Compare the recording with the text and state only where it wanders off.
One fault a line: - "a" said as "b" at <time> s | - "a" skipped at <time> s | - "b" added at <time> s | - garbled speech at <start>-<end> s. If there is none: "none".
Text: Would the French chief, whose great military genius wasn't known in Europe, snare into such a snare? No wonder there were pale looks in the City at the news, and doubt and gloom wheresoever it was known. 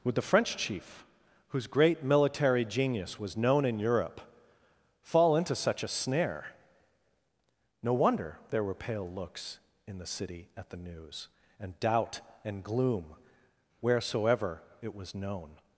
- "wasn't" said as "was" at 3.2 s
- "snare" said as "fall" at 5.0 s